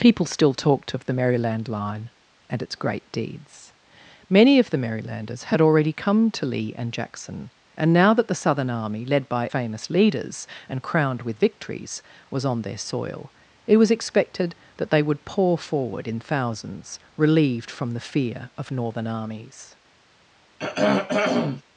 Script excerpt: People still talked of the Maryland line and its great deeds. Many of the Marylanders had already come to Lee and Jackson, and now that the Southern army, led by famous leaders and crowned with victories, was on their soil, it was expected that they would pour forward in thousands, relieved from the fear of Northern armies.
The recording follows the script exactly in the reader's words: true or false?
true